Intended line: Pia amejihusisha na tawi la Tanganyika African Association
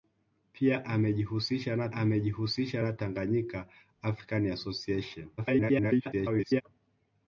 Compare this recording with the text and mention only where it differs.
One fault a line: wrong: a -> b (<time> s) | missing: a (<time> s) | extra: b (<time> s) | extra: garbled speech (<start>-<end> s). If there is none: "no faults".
wrong: tawi -> amejihusisha (1.9 s)
extra: garbled speech (5.4-6.6 s)